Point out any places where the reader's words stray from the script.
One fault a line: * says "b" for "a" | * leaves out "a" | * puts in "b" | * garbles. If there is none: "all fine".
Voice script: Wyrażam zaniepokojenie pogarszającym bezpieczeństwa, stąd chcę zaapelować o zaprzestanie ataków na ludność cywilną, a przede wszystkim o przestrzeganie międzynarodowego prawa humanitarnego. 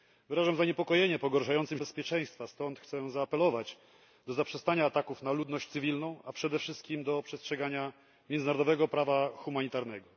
all fine